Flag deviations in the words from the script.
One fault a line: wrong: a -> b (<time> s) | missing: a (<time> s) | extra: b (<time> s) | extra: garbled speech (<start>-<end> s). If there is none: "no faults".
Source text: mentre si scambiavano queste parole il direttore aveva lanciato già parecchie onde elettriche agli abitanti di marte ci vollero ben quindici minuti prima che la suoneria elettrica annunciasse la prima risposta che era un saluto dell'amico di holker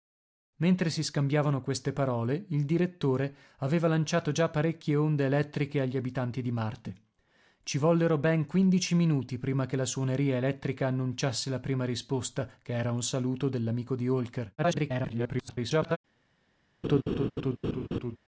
extra: garbled speech (14.6-16.0 s)